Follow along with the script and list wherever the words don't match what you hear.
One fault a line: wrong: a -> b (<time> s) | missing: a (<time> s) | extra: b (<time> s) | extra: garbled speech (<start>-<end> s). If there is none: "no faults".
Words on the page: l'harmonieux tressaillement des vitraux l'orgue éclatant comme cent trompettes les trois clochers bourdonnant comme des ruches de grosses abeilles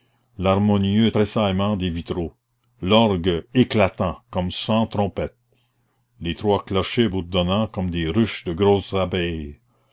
no faults